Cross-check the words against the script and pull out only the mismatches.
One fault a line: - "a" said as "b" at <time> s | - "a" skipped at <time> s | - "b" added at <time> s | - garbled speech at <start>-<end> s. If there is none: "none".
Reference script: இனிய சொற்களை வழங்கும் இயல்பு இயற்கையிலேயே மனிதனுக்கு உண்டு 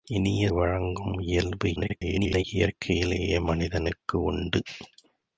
- "சொற்களை" skipped at 0.5 s
- garbled speech at 1.8-2.4 s